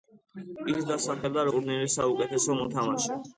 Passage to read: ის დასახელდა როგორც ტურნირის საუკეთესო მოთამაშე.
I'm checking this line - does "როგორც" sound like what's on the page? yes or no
no